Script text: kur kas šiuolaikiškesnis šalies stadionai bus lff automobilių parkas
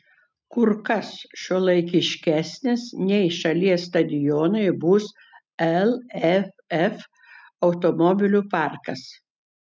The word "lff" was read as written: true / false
true